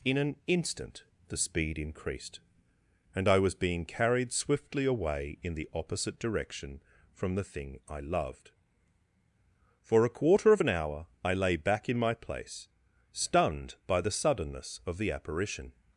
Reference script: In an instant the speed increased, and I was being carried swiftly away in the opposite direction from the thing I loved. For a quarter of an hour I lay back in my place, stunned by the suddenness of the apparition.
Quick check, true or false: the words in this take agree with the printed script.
true